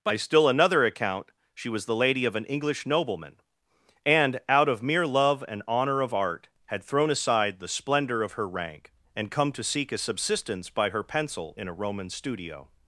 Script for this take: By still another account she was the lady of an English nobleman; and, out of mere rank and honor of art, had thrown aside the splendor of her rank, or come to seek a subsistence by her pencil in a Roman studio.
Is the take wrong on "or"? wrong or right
wrong